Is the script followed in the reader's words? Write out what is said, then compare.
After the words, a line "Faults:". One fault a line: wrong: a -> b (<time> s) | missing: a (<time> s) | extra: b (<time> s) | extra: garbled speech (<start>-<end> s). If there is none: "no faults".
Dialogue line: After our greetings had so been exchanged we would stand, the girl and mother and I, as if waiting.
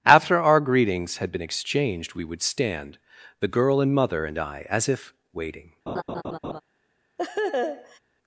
After our greetings had been exchanged we would stand, the girl and mother and I, as if waiting.
Faults:
missing: so (1.3 s)